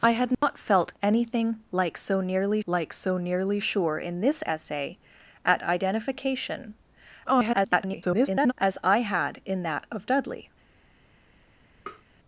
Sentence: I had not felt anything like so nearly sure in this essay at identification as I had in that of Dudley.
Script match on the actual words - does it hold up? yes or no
no